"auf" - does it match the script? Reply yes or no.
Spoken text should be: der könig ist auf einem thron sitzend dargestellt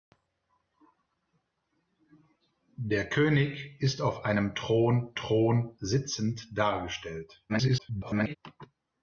yes